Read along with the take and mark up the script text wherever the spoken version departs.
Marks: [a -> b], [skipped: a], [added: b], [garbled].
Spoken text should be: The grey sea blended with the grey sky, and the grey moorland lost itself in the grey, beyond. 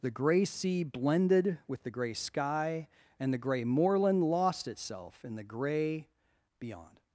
The grey sea blended with the grey sky, and the grey moorland lost itself in the grey, beyond.